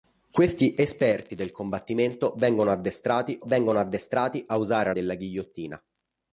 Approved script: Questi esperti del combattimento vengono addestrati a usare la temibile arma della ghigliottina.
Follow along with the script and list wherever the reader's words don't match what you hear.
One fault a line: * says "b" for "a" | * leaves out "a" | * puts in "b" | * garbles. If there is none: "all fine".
* puts in "vengono addestrati"
* leaves out "la temibile arma"